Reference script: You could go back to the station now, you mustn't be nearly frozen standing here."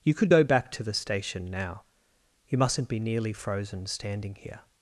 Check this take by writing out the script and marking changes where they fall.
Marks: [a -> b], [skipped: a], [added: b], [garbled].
You could go back to the station now, you mustn't be nearly frozen standing here."